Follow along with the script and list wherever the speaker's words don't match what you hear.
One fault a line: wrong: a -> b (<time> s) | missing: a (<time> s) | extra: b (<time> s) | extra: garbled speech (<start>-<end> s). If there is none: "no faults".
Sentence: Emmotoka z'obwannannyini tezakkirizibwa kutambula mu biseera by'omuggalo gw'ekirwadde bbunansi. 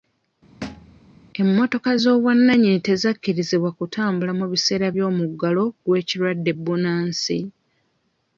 no faults